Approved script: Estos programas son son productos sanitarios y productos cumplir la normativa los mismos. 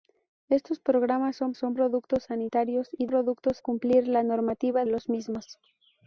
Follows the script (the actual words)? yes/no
yes